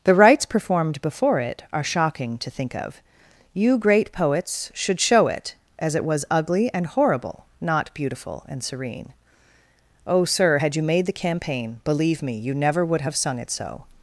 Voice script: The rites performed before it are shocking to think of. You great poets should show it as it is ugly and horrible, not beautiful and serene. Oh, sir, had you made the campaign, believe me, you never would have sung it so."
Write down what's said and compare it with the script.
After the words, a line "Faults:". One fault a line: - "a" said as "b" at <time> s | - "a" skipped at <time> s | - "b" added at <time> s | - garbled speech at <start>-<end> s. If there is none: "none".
The rites performed before it are shocking to think of. You great poets should show it as it was ugly and horrible, not beautiful and serene. Oh, sir, had you made the campaign, believe me, you never would have sung it so."
Faults:
- "is" said as "was" at 6.0 s